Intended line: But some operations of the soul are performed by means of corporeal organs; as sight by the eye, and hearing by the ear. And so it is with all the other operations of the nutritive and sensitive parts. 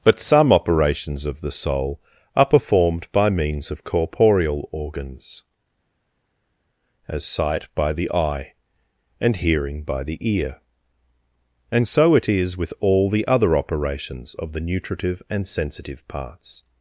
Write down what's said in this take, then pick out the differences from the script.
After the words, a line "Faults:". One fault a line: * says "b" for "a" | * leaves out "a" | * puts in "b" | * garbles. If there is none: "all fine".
But some operations of the soul are performed by means of corporeal organs; as sight by the eye, and hearing by the ear. And so it is with all the other operations of the nutritive and sensitive parts.
Faults:
all fine